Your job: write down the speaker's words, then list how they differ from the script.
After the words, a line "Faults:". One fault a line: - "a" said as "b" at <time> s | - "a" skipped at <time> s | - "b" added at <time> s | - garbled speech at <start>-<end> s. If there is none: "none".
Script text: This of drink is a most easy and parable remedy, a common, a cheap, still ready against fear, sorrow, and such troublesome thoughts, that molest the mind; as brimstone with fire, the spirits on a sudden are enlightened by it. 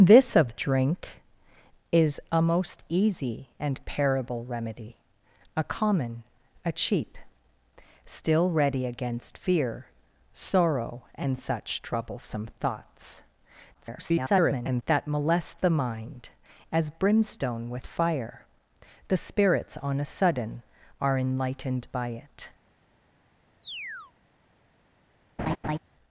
This of drink is a most easy and parable remedy, a common, a cheap, still ready against fear, sorrow, and such troublesome thoughts, [garbled] that molest the mind; as brimstone with fire, the spirits on a sudden are enlightened by it.
Faults:
- garbled speech at 13.7-14.8 s